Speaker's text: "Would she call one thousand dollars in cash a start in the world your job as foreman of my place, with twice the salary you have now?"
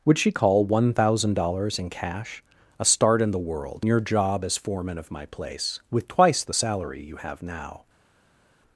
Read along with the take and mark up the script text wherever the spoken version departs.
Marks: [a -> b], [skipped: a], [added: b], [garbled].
"Would she call one thousand dollars in cash a start in the world your job as foreman of my place, with twice the salary you have now?"